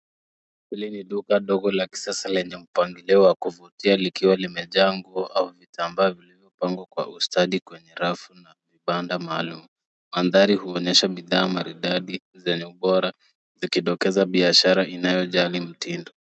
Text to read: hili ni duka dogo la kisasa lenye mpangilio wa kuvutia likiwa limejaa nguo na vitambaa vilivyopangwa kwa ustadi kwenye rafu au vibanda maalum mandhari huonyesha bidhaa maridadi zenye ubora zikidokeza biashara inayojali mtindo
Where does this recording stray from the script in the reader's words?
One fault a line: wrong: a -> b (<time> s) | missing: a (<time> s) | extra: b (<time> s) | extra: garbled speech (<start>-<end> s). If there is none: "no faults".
wrong: na -> au (5.3 s)
wrong: au -> na (8.3 s)